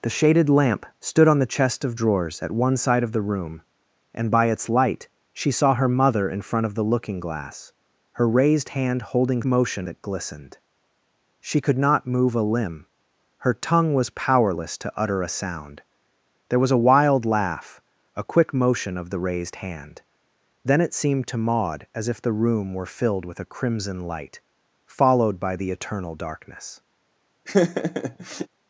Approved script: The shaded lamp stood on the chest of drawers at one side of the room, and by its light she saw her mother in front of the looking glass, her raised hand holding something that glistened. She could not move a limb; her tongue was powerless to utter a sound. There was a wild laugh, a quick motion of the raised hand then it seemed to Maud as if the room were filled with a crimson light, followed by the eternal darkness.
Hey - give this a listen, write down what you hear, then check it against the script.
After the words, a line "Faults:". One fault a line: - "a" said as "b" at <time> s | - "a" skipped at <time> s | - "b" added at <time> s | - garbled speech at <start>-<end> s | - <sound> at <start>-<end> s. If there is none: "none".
The shaded lamp stood on the chest of drawers at one side of the room, and by its light she saw her mother in front of the looking glass, her raised hand holding motion that glistened. She could not move a limb; her tongue was powerless to utter a sound. There was a wild laugh, a quick motion of the raised hand then it seemed to Maud as if the room were filled with a crimson light, followed by the eternal darkness.
Faults:
- "something" said as "motion" at 9.4 s
- laugh at 27.5-28.5 s